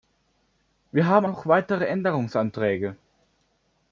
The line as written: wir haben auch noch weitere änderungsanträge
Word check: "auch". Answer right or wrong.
wrong